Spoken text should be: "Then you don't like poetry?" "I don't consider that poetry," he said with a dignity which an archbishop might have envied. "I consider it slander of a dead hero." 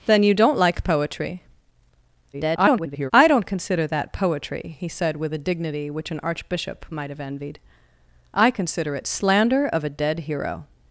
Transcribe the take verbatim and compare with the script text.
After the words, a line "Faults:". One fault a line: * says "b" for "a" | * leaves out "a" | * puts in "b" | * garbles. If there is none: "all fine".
"Then you don't like poetry?" [garbled] "I don't consider that poetry," he said with a dignity which an archbishop might have envied. "I consider it slander of a dead hero."
Faults:
* garbles